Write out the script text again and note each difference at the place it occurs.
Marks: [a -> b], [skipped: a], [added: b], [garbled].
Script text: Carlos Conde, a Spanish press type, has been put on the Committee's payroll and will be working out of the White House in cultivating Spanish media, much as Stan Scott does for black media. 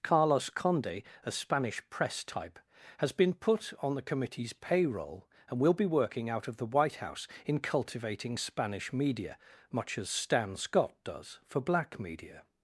Carlos Conde, a Spanish press type, has been put on the Committee's payroll and will be working out of the White House in cultivating Spanish media, much as Stan Scott does for black media.